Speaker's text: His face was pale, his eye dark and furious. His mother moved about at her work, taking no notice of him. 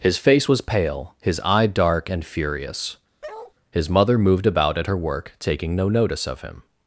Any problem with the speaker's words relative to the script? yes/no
no